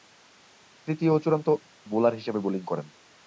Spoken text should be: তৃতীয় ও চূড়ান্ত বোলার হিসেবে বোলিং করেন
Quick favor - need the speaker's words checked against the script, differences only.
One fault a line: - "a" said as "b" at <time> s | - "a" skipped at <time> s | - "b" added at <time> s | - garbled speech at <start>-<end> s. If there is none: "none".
none